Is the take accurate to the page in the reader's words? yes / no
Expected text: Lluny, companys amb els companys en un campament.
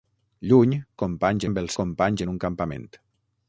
yes